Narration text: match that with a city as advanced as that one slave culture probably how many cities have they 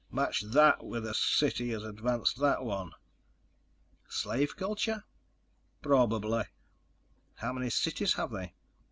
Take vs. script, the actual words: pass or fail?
fail